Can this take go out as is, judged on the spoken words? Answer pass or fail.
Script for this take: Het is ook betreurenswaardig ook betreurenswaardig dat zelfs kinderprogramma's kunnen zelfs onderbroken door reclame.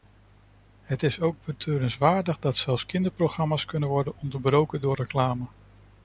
fail